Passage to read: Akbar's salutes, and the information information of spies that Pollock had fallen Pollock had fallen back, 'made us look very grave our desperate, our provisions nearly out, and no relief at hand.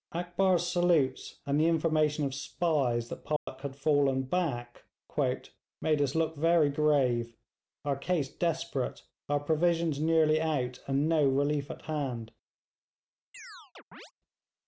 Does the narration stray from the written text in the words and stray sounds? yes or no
yes